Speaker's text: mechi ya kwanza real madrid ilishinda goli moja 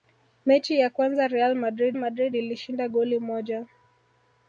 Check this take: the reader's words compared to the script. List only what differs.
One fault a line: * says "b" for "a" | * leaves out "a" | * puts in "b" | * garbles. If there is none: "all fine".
* puts in "madrid"